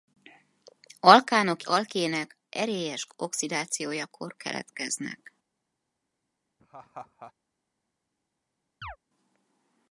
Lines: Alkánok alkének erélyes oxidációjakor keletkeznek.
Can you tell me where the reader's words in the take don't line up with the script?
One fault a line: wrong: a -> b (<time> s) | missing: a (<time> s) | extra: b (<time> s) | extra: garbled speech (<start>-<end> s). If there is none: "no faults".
no faults